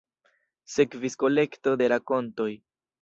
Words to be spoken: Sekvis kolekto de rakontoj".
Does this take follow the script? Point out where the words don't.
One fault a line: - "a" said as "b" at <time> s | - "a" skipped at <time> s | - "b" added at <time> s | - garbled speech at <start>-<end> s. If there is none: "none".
none